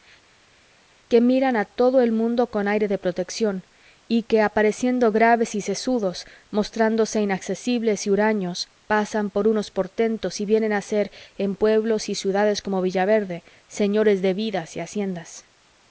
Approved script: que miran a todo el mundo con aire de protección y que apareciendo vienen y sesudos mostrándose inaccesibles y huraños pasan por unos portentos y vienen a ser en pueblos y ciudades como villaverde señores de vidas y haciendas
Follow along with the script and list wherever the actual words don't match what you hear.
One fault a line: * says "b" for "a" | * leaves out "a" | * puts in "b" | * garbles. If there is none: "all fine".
* says "graves" for "vienen"